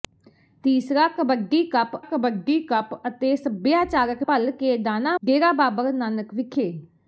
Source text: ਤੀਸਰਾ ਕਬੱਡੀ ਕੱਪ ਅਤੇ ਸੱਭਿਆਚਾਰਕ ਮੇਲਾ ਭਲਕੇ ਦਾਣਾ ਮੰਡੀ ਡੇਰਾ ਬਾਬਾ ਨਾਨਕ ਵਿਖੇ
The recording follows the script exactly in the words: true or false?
false